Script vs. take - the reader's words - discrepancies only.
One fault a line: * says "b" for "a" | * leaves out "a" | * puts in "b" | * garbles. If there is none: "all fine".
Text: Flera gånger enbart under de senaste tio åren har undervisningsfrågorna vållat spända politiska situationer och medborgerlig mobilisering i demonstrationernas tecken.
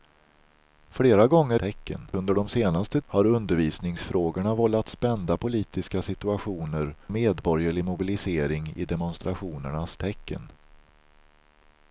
* says "tecken" for "enbart"
* leaves out "tio åren"
* leaves out "och"